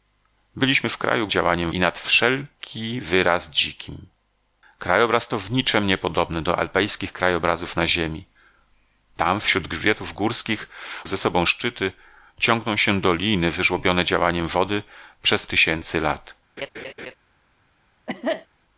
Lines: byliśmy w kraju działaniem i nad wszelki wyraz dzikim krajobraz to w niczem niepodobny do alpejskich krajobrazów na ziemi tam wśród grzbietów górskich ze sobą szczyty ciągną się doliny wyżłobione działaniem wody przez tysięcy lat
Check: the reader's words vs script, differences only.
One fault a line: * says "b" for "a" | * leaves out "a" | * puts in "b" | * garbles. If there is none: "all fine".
all fine